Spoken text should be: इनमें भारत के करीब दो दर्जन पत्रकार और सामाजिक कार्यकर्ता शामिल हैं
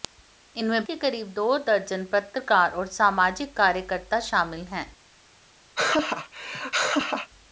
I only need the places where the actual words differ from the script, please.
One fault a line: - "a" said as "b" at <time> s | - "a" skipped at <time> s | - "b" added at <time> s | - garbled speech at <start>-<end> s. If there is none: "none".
- "भारत" skipped at 0.8 s